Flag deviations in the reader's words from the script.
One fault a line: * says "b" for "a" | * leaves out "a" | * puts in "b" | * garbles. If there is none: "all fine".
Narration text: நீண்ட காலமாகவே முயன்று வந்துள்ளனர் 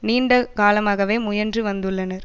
all fine